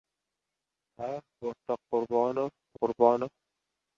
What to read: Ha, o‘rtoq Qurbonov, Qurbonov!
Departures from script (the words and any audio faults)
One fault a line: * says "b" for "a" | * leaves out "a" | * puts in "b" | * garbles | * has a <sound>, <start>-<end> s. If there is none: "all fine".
all fine